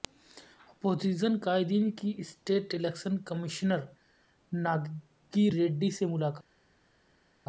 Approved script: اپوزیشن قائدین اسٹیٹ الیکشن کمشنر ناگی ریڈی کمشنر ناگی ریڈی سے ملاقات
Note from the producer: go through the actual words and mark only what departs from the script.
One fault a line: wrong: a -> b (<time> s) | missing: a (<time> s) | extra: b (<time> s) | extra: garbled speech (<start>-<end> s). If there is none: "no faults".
extra: کی (1.9 s)
missing: کمشنر ناگی ریڈی (5.9 s)